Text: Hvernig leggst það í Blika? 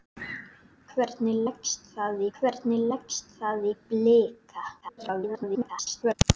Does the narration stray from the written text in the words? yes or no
yes